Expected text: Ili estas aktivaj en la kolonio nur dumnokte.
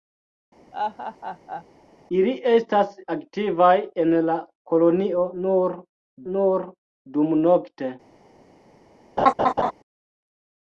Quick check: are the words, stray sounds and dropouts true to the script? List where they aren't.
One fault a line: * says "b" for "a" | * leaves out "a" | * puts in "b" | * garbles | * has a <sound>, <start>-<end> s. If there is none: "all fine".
* has a laugh, 0.7-1.6 s
* puts in "nur"
* has a laugh, 9.2-9.7 s